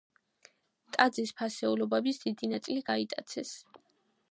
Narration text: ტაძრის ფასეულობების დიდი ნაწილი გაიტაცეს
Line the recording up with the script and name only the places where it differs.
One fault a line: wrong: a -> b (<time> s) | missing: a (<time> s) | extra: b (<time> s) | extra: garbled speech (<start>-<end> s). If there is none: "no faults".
no faults